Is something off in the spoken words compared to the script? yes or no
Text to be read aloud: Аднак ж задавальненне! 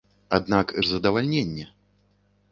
no